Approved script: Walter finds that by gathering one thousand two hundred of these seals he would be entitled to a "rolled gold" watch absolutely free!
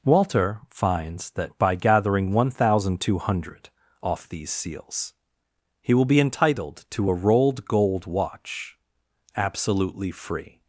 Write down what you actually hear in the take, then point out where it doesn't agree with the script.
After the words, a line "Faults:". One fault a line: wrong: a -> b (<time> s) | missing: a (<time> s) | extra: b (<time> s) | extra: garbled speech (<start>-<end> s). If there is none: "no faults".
Walter finds that by gathering one thousand two hundred off these seals he will be entitled to a "rolled gold" watch absolutely free!
Faults:
wrong: of -> off (4.0 s)
wrong: would -> will (5.9 s)